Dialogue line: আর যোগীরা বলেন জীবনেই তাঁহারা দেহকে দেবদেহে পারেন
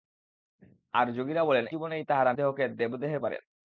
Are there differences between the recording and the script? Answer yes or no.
no